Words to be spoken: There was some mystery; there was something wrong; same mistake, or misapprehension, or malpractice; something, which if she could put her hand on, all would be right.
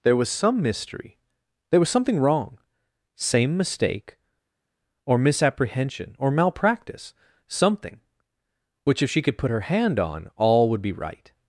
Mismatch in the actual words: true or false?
false